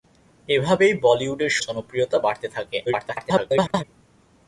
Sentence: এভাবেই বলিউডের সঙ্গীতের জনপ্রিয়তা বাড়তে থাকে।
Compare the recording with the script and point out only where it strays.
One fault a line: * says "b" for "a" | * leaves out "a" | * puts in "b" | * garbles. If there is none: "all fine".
* leaves out "সঙ্গীতের"
* garbles